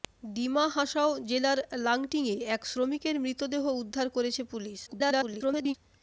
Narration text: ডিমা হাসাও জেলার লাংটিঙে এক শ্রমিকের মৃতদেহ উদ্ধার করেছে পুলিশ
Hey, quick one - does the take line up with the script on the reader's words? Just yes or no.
no